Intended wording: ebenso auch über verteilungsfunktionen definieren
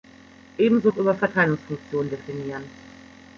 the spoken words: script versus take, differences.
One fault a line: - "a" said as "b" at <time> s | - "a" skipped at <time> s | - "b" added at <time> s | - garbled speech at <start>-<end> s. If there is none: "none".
none